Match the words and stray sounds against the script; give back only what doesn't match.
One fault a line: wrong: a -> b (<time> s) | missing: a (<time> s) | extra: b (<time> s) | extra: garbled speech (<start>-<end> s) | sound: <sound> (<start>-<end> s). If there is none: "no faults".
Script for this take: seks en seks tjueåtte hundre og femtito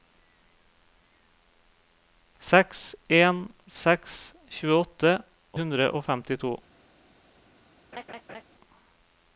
sound: laugh (7.9-8.4 s)